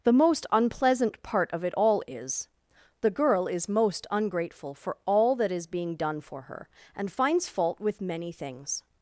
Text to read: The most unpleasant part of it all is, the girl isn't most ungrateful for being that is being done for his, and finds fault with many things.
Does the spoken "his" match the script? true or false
false